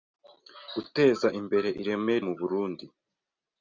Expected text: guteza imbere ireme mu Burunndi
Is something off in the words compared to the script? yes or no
no